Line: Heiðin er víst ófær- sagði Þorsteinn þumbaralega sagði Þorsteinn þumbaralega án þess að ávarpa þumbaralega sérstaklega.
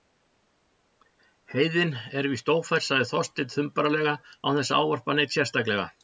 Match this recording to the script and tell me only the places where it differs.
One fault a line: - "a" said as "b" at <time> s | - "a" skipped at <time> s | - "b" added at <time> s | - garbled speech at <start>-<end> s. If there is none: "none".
- "sagði Þorsteinn þumbaralega" skipped at 4.2 s
- "þumbaralega" said as "neinn" at 5.2 s